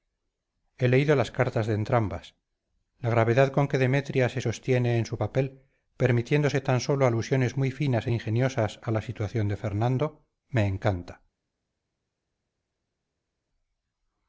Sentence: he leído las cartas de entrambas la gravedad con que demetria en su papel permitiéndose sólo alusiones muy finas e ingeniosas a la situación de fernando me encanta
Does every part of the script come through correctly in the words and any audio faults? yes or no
no